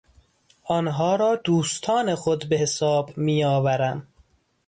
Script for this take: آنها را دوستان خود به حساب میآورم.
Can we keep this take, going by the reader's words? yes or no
yes